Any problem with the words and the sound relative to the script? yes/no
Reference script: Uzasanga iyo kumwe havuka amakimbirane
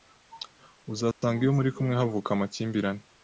yes